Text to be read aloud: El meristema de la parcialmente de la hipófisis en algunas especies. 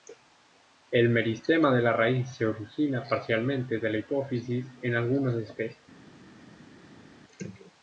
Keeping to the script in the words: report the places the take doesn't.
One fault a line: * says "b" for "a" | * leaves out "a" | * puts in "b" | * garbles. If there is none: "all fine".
* puts in "raíz se origina"